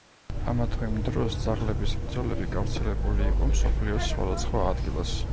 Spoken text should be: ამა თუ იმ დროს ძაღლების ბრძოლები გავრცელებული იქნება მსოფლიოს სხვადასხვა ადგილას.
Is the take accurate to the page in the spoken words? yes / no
no